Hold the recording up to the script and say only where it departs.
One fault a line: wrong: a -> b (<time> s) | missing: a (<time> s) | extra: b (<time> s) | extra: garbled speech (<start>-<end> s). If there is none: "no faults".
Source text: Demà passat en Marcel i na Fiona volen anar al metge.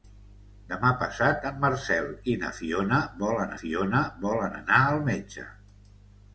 extra: Fiona volen (3.6 s)